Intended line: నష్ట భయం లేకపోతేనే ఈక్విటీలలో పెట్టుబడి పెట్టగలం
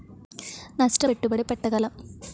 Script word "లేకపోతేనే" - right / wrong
wrong